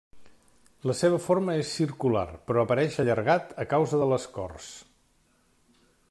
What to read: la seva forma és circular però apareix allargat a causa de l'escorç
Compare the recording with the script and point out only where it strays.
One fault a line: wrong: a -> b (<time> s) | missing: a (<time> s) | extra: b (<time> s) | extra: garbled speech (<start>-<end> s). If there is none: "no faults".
no faults